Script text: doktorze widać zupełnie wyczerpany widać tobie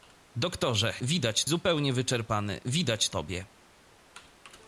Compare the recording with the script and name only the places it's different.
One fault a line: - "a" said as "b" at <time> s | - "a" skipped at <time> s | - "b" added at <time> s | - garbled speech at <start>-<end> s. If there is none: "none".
none